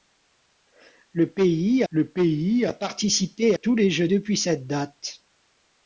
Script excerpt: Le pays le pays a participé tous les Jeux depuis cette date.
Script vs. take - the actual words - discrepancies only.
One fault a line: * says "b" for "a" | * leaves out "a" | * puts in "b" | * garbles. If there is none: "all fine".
all fine